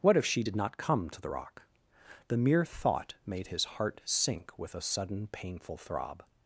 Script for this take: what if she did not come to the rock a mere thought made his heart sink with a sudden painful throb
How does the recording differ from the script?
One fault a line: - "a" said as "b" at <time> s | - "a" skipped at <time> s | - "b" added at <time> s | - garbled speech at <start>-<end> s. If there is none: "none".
- "a" said as "the" at 2.3 s